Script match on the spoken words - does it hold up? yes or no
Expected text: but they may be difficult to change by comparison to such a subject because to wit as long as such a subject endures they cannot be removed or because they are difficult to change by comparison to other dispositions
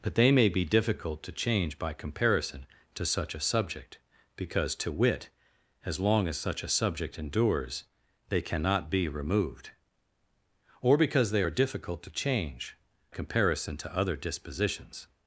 no